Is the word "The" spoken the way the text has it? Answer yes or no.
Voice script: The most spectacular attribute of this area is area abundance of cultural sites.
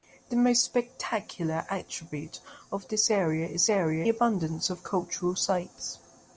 yes